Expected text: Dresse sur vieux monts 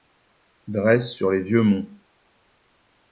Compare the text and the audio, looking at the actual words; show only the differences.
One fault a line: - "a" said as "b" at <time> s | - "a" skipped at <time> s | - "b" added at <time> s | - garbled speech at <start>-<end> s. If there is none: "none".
- "les" added at 1.3 s